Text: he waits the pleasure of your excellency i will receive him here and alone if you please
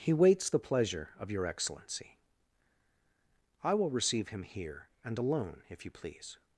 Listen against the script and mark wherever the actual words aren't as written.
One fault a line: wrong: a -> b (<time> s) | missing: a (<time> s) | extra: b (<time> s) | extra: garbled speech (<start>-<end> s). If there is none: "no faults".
no faults